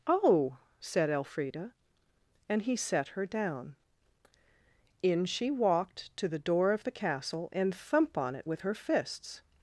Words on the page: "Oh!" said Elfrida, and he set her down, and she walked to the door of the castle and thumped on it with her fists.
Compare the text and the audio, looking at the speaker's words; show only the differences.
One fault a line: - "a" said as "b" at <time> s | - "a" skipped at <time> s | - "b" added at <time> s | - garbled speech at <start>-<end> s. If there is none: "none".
- "and" said as "in" at 5.0 s
- "thumped" said as "thump" at 7.7 s